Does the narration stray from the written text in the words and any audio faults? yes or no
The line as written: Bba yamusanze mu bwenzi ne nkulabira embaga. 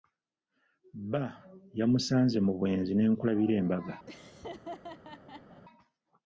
yes